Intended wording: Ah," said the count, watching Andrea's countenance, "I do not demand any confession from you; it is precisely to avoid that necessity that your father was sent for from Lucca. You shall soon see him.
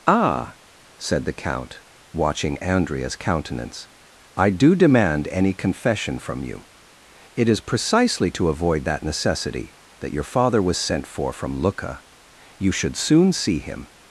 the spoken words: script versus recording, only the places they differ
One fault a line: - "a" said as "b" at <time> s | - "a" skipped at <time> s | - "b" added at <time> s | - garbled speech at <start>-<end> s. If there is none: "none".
- "not" skipped at 4.8 s
- "shall" said as "should" at 12.7 s